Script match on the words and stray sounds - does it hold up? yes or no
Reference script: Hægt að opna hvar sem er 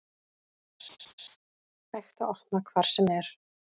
no